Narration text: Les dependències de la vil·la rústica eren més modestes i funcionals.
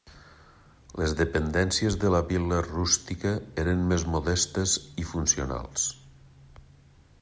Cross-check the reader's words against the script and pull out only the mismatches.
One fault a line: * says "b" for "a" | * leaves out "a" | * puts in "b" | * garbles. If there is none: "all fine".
all fine